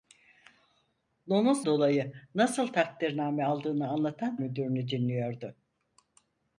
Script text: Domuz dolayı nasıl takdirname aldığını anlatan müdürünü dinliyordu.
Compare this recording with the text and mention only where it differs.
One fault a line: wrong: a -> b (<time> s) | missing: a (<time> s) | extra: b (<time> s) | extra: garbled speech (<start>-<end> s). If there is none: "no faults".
no faults